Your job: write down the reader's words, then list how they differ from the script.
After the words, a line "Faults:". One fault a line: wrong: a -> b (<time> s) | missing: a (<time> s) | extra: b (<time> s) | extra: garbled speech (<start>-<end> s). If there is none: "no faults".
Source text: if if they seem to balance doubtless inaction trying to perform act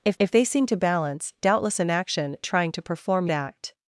if if they seem to balance doubtless inaction trying to perform act
Faults:
no faults